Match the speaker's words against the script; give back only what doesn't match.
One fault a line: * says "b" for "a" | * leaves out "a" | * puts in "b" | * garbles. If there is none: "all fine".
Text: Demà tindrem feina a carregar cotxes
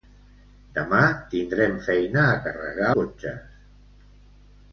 all fine